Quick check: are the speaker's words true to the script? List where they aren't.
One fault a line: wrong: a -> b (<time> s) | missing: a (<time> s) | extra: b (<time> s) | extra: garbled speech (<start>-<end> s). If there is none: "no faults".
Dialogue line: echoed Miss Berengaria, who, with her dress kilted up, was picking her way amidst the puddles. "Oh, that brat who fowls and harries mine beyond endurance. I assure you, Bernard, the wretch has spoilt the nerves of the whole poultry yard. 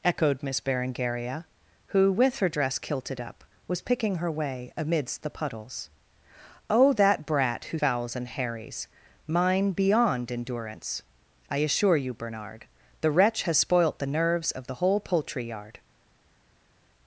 no faults